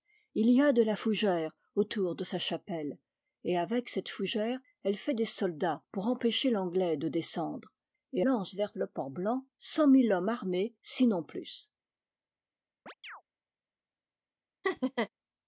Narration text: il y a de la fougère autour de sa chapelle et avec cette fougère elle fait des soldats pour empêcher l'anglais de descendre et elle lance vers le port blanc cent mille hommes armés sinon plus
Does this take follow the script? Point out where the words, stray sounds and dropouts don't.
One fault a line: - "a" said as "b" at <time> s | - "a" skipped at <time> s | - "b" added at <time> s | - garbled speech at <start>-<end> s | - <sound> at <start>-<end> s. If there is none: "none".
- "elle" skipped at 8.2 s
- chirp at 12.9-13.2 s
- laugh at 14.6-15.1 s